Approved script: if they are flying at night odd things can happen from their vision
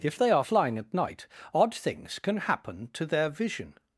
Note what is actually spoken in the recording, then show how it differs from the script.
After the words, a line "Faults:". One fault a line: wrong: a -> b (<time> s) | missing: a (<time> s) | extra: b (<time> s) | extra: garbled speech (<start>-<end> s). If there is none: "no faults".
if they are flying at night odd things can happen to their vision
Faults:
wrong: from -> to (2.9 s)